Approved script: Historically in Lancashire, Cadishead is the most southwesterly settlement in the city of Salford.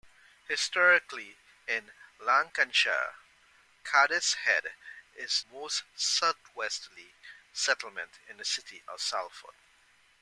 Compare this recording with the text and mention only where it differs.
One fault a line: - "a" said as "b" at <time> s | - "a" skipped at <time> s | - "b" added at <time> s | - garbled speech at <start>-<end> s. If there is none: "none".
- "the" skipped at 5.4 s